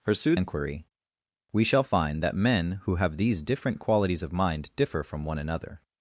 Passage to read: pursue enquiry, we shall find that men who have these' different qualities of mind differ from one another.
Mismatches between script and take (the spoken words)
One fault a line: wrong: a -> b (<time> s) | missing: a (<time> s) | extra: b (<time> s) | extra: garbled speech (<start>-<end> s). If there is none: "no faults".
no faults